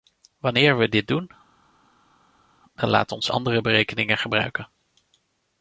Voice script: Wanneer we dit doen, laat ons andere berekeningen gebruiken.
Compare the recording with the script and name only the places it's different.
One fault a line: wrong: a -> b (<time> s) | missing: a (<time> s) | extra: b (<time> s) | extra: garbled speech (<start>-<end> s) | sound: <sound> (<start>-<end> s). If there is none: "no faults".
extra: dan (2.8 s)